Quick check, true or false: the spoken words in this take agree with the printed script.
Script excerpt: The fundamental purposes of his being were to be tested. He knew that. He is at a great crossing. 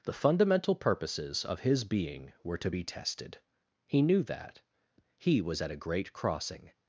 false